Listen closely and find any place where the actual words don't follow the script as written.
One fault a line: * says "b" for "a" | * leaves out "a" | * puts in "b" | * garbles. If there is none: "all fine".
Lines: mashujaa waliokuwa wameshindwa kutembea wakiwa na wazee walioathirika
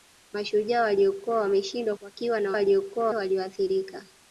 * leaves out "kutembea"
* says "waliokuwa" for "wazee"